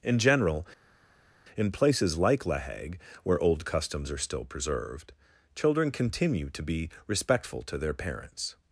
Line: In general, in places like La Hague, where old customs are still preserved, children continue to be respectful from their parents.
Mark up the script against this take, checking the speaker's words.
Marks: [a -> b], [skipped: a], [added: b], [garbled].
In general, in places like La Hague, where old customs are still preserved, children continue to be respectful [from -> to] their parents.